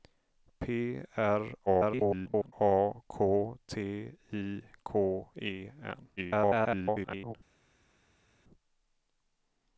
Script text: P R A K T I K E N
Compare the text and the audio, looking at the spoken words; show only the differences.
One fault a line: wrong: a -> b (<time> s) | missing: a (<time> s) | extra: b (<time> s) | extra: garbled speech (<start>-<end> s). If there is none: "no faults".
extra: garbled speech (1.7-2.5 s)
extra: garbled speech (6.2-7.3 s)